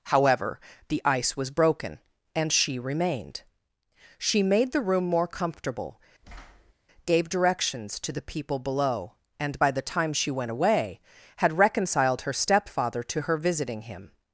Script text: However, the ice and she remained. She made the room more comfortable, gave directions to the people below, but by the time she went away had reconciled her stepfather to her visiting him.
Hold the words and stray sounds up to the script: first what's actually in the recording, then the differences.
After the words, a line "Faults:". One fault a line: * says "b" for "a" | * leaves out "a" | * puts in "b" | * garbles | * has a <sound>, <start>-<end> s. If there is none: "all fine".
However, the ice was broken, and she remained. She made the room more comfortable, gave directions to the people below, and by the time she went away had reconciled her stepfather to her visiting him.
Faults:
* puts in "was broken"
* has a thud, 6.2-6.7 s
* says "and" for "but"